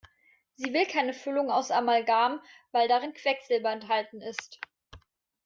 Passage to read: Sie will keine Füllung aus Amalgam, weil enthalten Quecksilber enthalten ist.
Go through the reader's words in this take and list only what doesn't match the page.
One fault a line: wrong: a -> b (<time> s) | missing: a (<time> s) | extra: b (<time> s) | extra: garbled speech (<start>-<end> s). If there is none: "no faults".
wrong: enthalten -> darin (2.9 s)